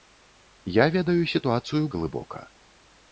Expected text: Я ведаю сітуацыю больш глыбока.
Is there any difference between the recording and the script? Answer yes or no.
yes